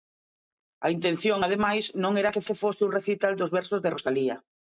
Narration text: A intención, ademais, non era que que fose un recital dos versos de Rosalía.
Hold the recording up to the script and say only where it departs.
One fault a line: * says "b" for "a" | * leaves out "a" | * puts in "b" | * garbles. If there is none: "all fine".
all fine